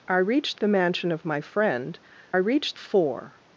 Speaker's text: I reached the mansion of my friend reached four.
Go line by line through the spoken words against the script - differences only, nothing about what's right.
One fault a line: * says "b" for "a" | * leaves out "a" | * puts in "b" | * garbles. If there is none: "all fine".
all fine